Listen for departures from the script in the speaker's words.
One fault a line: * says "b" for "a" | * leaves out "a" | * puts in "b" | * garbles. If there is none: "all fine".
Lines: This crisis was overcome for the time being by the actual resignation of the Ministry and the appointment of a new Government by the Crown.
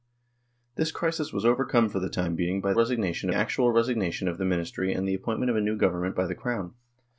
* says "resignation" for "the"